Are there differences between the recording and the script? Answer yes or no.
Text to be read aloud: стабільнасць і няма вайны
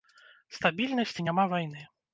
no